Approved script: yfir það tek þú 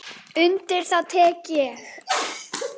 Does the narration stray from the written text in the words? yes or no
yes